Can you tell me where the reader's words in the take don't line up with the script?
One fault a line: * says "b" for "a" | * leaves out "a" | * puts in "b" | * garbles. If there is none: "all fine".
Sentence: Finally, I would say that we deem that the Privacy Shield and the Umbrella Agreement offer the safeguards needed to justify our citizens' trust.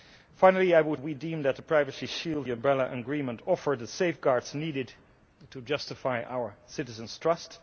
* leaves out "say that"
* leaves out "and"